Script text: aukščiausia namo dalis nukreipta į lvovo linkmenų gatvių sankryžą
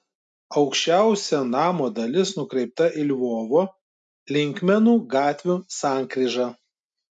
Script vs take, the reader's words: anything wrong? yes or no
no